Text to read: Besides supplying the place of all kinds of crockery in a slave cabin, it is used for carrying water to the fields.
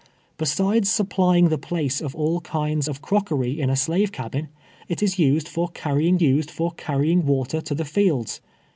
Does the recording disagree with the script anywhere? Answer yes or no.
yes